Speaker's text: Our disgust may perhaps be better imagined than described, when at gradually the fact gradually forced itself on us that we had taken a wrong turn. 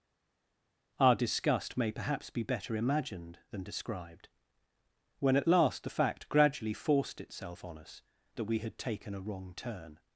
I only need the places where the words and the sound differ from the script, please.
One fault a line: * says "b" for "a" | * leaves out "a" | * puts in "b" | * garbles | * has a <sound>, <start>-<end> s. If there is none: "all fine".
* says "last" for "gradually"